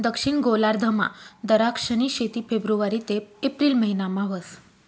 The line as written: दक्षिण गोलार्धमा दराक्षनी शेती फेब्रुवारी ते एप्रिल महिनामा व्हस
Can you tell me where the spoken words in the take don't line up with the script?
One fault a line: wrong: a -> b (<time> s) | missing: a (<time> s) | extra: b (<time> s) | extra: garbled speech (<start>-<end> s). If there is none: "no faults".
no faults